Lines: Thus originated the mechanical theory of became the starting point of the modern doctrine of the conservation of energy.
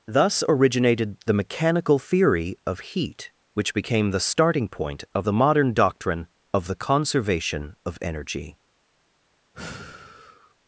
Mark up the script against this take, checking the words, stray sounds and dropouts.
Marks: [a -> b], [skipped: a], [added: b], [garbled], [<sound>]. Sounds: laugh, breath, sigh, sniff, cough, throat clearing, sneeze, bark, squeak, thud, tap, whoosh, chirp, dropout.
Thus originated the mechanical theory of [added: heat which] became the starting point of the modern doctrine of the conservation of energy. [sigh]